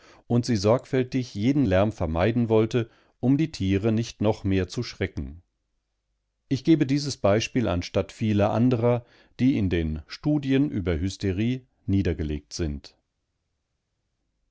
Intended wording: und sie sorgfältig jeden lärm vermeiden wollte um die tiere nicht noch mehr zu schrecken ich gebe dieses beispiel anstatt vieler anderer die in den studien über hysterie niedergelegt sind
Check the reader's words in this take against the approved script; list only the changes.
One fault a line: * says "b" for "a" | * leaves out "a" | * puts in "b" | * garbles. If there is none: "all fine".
all fine